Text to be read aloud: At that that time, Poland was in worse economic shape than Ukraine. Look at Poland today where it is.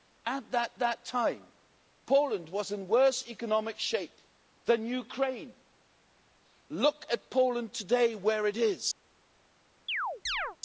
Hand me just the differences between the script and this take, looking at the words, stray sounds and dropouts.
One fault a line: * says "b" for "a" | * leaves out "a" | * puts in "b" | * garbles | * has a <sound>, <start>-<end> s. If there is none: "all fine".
* has a chirp, 9.9-10.6 s